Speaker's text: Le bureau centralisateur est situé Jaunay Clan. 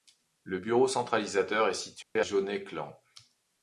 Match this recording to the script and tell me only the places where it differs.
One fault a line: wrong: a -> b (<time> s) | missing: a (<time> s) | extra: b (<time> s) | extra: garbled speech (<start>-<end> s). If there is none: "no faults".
no faults